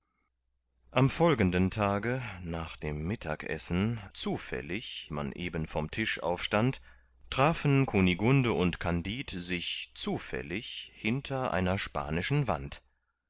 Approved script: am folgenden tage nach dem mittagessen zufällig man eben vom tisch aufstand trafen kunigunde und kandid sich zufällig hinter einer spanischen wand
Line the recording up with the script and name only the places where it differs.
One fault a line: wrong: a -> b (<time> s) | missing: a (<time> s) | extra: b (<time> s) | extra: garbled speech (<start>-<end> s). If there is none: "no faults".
no faults